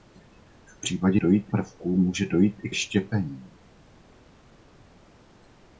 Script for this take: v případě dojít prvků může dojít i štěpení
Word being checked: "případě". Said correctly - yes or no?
yes